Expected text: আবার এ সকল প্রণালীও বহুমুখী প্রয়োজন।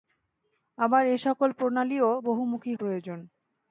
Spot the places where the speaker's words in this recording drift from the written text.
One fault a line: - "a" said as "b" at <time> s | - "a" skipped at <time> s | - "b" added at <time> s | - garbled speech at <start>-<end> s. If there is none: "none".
none